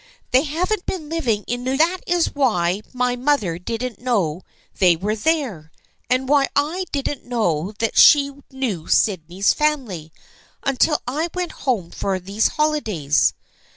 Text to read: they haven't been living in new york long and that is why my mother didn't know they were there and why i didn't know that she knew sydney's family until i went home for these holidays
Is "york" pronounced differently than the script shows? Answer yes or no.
yes